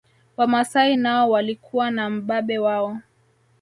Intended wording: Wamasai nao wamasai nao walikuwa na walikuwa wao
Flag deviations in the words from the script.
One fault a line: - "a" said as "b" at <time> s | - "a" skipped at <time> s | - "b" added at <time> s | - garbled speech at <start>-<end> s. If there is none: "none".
- "wamasai nao" skipped at 1.3 s
- "walikuwa" said as "mbabe" at 2.1 s